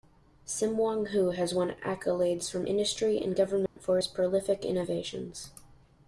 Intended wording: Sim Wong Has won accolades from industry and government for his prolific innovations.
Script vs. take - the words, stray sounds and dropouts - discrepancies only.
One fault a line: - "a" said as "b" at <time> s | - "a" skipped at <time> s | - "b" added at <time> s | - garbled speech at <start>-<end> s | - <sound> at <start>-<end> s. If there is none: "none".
- "Hoo" added at 1.1 s
- dropout at 3.7-3.8 s